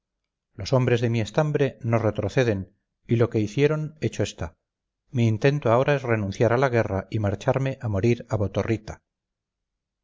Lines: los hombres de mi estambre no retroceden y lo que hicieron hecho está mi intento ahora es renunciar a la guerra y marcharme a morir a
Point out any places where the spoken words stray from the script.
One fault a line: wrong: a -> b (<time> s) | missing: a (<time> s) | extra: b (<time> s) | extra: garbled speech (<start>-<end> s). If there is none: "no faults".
no faults